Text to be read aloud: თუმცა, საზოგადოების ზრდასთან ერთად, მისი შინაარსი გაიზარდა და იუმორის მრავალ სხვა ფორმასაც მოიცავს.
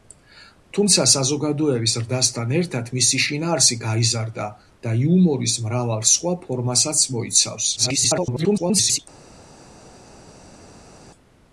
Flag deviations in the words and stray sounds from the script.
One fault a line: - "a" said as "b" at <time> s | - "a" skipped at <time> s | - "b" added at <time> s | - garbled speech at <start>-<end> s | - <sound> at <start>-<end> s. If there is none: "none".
- garbled speech at 7.8-9.0 s